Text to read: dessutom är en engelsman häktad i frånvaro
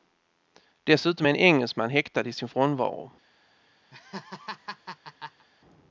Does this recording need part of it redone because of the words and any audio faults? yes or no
yes